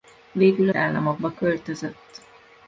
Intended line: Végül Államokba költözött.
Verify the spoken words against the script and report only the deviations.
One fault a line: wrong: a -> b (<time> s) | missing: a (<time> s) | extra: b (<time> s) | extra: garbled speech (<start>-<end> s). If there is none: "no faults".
no faults